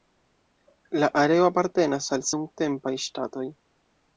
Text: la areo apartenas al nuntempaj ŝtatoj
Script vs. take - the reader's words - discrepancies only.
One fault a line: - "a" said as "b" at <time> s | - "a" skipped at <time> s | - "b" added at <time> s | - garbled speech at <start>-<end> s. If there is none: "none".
none